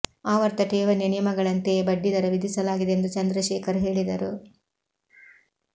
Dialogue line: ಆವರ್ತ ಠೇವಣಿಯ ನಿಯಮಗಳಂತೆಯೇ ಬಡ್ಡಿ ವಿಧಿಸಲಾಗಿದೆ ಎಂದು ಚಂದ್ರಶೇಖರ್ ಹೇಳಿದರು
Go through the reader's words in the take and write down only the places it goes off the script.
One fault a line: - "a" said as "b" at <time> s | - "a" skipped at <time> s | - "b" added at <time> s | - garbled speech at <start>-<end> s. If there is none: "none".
- "ದರ" added at 2.1 s